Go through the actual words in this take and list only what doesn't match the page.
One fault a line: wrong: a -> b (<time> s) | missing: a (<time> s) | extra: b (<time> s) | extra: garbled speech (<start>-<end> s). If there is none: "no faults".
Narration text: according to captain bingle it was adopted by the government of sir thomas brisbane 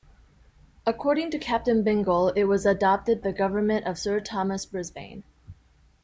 missing: by (3.2 s)